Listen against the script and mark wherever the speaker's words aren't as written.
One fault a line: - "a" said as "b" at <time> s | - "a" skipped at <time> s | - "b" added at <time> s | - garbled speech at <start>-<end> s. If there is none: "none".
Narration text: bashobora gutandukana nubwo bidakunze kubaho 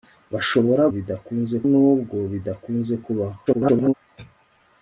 - "gutandukana" said as "bidakunze" at 0.9 s
- garbled speech at 3.5-3.9 s